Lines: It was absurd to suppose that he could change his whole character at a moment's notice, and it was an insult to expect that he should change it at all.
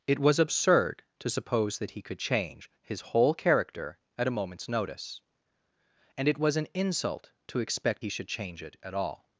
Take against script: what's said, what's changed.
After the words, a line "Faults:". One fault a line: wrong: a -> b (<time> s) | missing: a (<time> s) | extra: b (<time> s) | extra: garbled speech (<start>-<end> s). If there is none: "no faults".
It was absurd to suppose that he could change his whole character at a moment's notice, and it was an insult to expect he should change it at all.
Faults:
missing: that (8.0 s)